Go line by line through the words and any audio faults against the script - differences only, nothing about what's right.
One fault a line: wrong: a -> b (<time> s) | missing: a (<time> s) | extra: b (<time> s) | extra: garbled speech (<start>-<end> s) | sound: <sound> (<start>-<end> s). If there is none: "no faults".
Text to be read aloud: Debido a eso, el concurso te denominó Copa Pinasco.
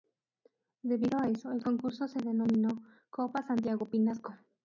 wrong: te -> se (2.1 s)
extra: Santiago (3.4 s)